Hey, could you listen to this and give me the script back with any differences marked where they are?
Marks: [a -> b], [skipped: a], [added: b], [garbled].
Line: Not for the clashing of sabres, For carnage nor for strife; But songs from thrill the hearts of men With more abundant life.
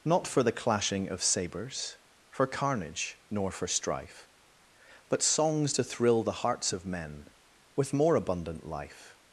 Not for the clashing of sabres, For carnage nor for strife; But songs [from -> to] thrill the hearts of men With more abundant life.